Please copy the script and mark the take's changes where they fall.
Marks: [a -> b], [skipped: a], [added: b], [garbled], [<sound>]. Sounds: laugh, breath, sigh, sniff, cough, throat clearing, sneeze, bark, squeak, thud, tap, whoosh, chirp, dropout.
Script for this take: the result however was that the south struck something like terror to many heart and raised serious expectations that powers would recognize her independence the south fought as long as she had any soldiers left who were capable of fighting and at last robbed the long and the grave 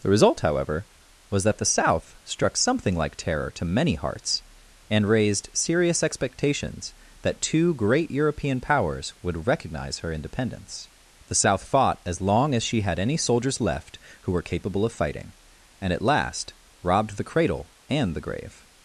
the result however was that the south struck something like terror to many [heart -> hearts] and raised serious expectations that [added: two great european] powers would recognize her independence the south fought as long as she had any soldiers left who were capable of fighting and at last robbed the [long -> cradle] and the grave